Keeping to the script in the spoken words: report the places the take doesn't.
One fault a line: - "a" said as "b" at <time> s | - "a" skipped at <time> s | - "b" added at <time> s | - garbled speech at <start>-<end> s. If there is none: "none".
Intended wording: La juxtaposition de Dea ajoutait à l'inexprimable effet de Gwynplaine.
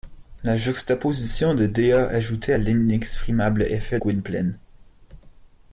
- "de" skipped at 4.0 s